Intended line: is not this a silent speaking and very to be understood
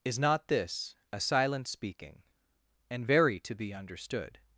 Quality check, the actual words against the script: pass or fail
pass